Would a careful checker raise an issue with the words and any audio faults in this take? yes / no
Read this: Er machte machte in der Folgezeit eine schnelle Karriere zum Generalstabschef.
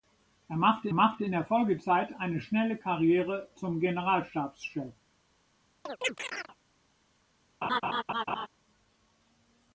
yes